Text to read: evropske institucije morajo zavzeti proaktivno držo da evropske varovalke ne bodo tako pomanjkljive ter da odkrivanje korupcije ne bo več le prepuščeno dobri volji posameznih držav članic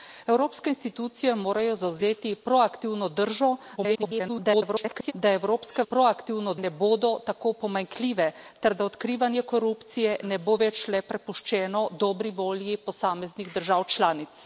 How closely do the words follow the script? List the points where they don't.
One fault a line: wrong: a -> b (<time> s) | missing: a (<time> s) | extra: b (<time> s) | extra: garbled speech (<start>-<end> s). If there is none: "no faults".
extra: garbled speech (3.8-5.1 s)
wrong: varovalke -> proaktivno (5.8 s)